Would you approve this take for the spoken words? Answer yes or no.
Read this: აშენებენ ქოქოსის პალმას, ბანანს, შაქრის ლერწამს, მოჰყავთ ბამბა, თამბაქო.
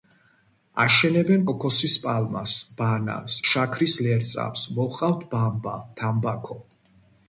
yes